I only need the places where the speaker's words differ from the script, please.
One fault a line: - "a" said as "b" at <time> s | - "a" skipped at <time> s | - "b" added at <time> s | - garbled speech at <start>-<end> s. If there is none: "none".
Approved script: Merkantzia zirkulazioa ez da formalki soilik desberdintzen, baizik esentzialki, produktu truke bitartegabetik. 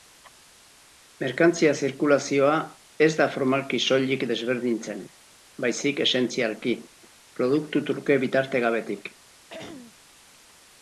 none